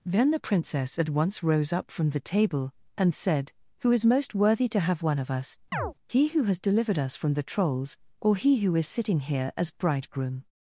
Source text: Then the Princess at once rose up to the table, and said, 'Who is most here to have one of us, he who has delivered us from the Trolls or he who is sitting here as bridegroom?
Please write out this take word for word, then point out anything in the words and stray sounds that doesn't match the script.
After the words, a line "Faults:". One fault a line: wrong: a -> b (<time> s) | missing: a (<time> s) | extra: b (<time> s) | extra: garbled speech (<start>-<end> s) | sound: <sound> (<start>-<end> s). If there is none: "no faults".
Then the Princess at once rose up from the table, and said, 'Who is most worthy to have one of us, he who has delivered us from the Trolls or he who is sitting here as bridegroom?
Faults:
wrong: to -> from (1.9 s)
wrong: here -> worthy (4.3 s)
sound: chirp (5.7-5.9 s)